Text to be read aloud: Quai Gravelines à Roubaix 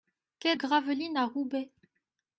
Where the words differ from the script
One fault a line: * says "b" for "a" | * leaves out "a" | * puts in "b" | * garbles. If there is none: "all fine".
all fine